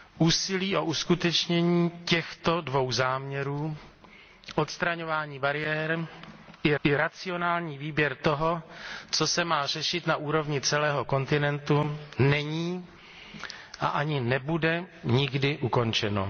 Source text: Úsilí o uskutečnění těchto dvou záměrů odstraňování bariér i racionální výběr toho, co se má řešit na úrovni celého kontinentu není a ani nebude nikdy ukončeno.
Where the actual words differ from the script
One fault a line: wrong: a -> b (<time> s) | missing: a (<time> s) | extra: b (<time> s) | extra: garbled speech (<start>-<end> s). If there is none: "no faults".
extra: i (6.8 s)